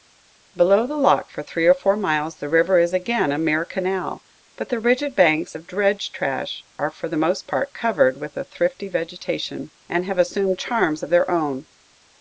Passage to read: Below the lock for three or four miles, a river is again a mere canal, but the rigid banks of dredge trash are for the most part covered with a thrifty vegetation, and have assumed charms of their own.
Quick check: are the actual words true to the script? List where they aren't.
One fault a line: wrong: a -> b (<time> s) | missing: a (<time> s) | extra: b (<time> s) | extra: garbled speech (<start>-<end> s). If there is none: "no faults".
wrong: a -> the (2.4 s)